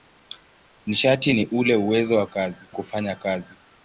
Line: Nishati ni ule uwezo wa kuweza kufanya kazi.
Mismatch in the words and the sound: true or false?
true